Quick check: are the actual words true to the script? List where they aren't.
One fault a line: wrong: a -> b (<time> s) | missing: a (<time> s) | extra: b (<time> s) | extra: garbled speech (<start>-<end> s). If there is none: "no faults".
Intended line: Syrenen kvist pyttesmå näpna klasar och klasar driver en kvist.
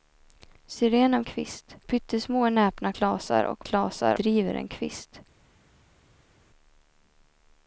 no faults